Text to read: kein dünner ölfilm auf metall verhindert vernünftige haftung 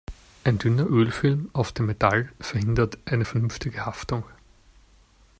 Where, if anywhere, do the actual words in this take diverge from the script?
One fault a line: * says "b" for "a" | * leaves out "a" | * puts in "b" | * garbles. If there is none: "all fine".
* says "ein" for "kein"
* puts in "dem"
* puts in "eine"